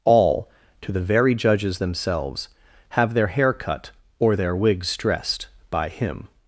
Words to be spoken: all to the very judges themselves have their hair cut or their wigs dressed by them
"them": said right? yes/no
no